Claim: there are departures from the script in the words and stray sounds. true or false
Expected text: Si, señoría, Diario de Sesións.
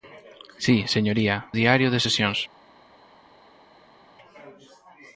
false